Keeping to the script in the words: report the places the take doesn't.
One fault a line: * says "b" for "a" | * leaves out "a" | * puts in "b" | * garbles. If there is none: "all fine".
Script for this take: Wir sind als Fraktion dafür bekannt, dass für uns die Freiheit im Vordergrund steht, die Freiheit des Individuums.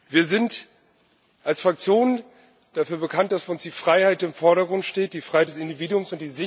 all fine